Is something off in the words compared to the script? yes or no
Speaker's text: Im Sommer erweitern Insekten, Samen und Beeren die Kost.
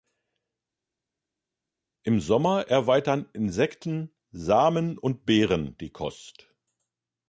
no